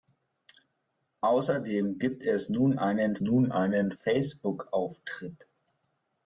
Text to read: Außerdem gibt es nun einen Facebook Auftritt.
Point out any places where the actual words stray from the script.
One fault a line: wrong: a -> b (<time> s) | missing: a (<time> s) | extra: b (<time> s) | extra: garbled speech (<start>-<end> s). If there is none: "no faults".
extra: nun einen (3.2 s)